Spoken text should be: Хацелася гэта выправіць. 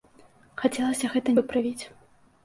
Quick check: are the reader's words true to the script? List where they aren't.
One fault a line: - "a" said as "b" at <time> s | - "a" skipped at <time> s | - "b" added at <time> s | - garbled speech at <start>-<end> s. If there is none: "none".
none